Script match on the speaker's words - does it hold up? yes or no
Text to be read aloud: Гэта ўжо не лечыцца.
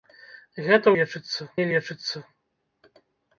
no